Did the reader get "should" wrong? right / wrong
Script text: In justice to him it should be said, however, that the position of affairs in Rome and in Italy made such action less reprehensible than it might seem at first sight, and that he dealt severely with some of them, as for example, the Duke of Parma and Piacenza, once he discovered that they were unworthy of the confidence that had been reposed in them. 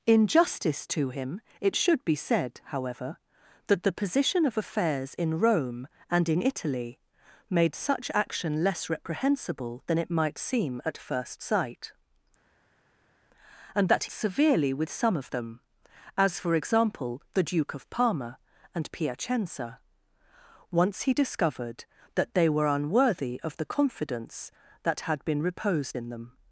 right